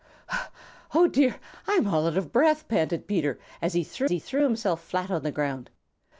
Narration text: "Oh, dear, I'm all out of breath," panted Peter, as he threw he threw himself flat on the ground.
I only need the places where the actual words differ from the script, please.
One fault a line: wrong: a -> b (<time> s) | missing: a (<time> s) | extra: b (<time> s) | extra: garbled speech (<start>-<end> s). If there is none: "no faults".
no faults